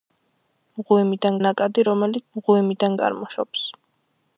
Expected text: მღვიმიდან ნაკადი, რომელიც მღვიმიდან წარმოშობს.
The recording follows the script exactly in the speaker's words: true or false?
true